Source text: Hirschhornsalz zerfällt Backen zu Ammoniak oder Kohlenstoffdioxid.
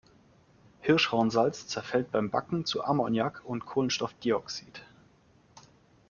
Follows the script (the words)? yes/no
no